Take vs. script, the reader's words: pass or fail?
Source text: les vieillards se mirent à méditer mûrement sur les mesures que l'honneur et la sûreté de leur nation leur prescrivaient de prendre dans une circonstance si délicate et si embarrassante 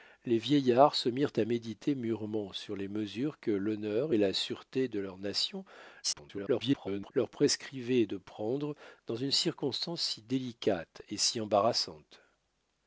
fail